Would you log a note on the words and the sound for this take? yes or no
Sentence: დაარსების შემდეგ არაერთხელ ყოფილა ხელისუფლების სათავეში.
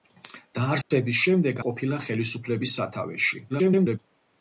yes